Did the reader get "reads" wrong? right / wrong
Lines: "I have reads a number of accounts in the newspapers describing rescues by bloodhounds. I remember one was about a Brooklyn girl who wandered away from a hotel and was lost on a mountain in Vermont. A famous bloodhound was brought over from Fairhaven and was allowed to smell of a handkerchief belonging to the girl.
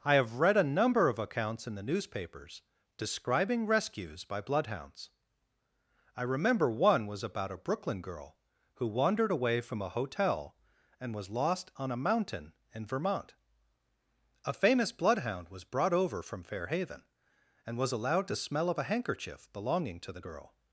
wrong